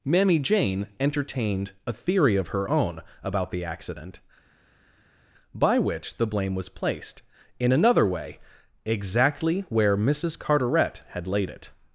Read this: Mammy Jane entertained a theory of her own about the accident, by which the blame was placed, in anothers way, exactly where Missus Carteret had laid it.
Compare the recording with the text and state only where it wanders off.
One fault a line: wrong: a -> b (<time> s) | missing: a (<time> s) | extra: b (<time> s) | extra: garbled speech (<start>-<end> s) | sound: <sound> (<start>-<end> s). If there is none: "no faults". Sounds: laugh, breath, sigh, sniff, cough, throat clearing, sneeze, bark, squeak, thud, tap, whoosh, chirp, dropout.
wrong: anothers -> another (7.7 s)